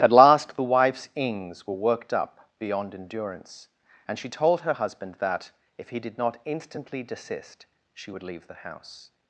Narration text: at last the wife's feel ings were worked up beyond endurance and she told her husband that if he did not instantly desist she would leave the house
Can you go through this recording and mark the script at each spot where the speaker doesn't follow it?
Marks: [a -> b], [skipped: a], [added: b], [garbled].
at last the wife's [skipped: feel] ings were worked up beyond endurance and she told her husband that if he did not instantly desist she would leave the house